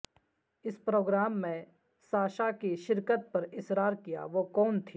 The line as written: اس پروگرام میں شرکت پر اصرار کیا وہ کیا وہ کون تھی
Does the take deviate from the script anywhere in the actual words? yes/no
yes